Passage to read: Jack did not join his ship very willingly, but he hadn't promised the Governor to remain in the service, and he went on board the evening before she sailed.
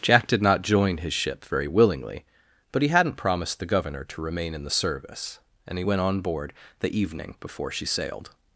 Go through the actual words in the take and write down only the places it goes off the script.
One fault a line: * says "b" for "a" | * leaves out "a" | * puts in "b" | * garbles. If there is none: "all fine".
all fine